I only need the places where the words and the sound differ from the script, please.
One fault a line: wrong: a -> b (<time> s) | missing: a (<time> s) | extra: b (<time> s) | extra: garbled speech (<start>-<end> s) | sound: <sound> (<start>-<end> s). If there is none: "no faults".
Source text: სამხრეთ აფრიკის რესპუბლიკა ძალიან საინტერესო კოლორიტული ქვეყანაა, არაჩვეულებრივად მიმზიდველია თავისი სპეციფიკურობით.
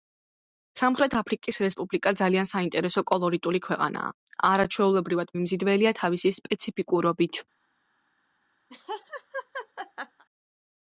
sound: laugh (8.7-10.2 s)